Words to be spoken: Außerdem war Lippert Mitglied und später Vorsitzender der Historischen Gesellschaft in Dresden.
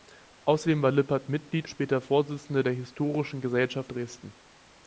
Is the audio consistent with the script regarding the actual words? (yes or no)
no